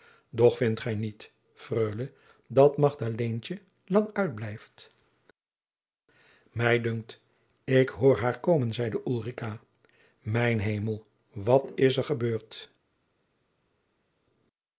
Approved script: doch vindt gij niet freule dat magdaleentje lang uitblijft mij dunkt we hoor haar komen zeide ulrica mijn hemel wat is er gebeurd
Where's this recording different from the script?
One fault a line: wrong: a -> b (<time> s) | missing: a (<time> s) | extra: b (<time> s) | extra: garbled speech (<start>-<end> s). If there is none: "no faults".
wrong: we -> ik (7.6 s)